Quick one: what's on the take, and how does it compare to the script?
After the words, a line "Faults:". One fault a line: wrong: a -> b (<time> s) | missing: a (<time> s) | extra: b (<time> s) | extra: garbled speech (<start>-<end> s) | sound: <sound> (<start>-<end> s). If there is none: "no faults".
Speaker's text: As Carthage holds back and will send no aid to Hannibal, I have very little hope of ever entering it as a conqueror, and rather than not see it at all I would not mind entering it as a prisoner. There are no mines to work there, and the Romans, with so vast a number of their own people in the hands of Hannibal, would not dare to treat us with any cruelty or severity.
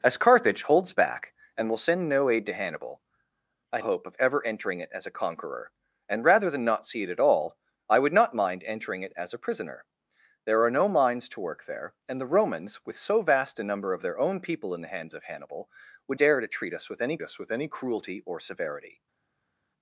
As Carthage holds back and will send no aid to Hannibal, I hope of ever entering it as a conqueror, and rather than not see it at all I would not mind entering it as a prisoner. There are no mines to work there, and the Romans, with so vast a number of their own people in the hands of Hannibal, would dare to treat us with any us with any cruelty or severity.
Faults:
missing: have very little (3.8 s)
missing: not (16.2 s)
extra: us with any (17.2 s)